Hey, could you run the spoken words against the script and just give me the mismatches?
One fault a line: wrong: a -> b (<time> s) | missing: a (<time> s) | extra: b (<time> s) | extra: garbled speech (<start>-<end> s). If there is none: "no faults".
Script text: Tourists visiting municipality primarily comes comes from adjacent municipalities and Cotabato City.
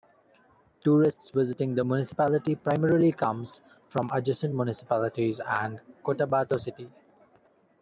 extra: the (1.8 s)
missing: comes (3.6 s)